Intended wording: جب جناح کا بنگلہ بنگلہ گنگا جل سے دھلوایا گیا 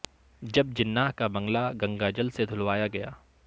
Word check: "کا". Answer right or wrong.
right